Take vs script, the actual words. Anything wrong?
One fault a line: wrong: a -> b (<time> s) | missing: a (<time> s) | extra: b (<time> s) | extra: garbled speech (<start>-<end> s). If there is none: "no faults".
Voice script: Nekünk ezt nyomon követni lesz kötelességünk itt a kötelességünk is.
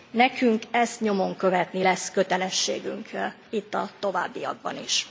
wrong: kötelességünk -> továbbiakban (4.0 s)